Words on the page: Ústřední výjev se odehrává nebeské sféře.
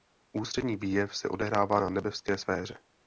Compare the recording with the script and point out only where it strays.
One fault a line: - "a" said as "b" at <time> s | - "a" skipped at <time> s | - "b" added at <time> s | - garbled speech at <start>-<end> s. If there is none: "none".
- "na" added at 1.8 s